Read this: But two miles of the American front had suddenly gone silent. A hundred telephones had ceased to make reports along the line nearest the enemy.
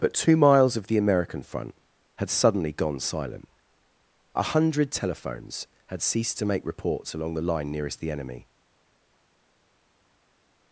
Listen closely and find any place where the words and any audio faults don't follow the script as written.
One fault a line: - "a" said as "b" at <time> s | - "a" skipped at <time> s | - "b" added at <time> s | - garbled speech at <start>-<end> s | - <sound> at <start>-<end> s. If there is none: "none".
none